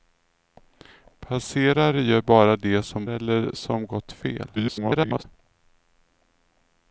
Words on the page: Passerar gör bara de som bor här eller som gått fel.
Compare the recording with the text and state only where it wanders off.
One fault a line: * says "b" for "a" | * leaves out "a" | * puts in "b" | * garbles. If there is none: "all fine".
* leaves out "bor här"
* garbles